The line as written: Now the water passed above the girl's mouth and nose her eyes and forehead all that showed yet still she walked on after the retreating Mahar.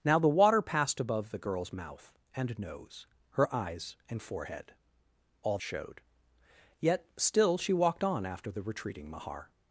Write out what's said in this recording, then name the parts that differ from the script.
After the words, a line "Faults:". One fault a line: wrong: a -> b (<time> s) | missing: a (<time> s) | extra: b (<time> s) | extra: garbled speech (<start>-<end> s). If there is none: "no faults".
Now the water passed above the girl's mouth and nose her eyes and forehead all showed yet still she walked on after the retreating Mahar.
Faults:
missing: that (5.6 s)